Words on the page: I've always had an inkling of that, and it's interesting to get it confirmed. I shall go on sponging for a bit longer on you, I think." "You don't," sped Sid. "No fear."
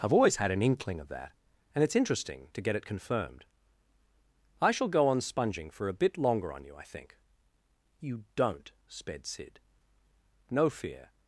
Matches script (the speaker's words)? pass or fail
pass